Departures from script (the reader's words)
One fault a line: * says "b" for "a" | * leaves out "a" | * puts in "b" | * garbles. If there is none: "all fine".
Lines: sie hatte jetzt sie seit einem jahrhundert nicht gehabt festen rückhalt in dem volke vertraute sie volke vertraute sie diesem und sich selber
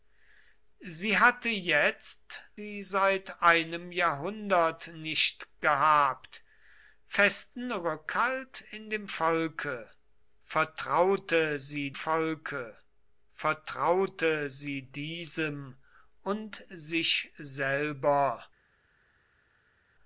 all fine